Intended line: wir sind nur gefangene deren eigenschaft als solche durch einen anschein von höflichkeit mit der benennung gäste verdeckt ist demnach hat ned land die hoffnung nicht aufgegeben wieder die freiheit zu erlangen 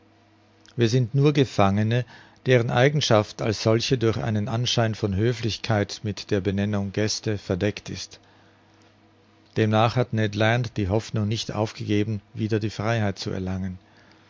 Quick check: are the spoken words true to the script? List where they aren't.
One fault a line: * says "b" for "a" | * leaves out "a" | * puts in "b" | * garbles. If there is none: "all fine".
all fine